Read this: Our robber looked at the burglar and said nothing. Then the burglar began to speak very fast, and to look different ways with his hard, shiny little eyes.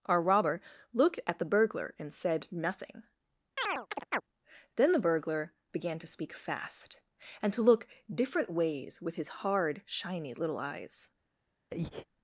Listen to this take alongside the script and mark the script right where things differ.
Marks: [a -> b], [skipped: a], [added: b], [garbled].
Our robber looked at the burglar and said nothing. Then the burglar began to speak [skipped: very] fast, and to look different ways with his hard, shiny little eyes.